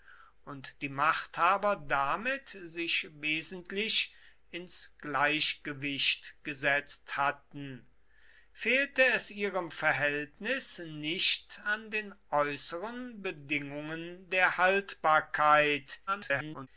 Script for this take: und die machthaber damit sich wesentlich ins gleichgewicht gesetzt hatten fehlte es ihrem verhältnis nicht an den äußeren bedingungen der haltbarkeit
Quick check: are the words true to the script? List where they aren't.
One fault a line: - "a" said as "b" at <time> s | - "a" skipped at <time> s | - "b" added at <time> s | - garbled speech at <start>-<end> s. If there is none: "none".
- garbled speech at 16.1-16.7 s